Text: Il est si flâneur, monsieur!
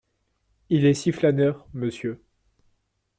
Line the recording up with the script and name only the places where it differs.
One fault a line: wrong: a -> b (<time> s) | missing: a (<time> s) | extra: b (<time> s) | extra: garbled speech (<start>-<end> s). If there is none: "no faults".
no faults